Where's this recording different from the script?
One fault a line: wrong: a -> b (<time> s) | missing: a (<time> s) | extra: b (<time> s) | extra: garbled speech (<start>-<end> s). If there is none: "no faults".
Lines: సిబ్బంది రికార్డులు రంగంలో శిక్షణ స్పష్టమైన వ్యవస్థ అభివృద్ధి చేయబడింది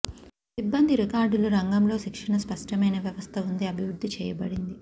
extra: ఉంది (3.5 s)